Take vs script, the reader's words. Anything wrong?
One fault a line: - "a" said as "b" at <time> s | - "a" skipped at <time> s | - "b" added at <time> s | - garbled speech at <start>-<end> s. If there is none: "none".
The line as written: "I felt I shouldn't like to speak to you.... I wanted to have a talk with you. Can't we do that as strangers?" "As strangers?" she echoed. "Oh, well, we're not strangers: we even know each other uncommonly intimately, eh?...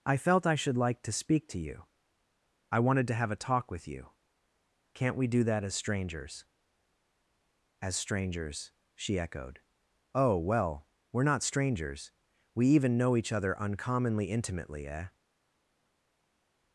- "shouldn't" said as "should" at 0.6 s